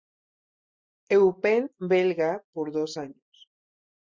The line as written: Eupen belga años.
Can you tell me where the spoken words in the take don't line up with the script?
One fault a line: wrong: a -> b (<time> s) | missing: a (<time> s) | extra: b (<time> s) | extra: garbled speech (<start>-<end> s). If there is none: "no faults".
extra: por dos (2.5 s)